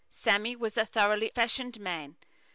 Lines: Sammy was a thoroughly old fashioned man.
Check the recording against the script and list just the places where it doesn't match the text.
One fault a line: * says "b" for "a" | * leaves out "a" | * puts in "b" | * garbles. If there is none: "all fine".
* leaves out "old"